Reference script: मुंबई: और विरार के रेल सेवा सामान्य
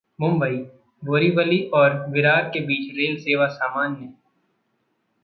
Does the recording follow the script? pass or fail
fail